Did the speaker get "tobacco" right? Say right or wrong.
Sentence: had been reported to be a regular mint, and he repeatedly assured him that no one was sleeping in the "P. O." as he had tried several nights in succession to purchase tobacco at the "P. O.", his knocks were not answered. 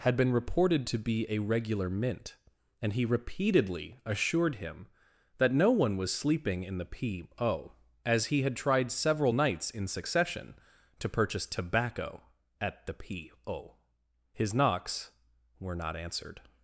right